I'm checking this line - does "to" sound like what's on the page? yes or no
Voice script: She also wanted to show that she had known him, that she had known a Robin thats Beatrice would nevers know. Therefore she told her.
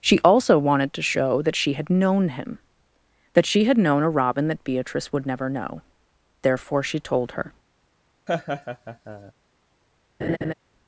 yes